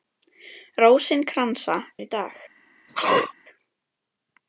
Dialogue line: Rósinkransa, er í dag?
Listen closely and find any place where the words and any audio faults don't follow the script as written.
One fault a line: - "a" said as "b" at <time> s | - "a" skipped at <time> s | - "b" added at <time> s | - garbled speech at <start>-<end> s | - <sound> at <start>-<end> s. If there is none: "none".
- sneeze at 2.9-3.3 s